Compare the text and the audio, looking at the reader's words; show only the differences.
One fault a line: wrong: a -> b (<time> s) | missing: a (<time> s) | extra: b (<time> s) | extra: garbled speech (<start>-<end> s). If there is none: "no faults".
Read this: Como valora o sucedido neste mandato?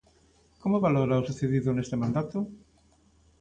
no faults